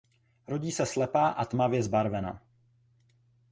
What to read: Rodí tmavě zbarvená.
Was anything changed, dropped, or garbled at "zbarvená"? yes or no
no